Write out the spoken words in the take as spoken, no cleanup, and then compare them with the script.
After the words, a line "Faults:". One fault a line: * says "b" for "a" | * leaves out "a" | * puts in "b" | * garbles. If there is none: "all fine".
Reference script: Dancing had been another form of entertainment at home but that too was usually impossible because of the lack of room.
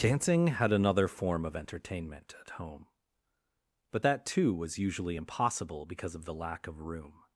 Dancing had another form of entertainment at home but that too was usually impossible because of the lack of room.
Faults:
* leaves out "been"